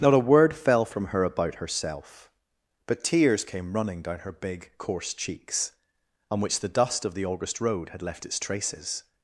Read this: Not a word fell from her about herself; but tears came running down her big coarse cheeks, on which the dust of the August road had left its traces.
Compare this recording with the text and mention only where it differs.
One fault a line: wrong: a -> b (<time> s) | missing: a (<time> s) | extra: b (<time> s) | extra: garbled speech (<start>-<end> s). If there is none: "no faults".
no faults